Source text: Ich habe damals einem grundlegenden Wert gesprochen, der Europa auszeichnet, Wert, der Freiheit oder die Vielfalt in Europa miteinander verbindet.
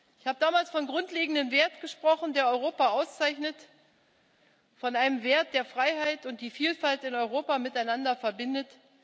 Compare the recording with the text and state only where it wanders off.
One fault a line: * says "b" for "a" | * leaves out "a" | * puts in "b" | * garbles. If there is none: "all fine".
* puts in "von"
* puts in "von einem"
* says "und" for "oder"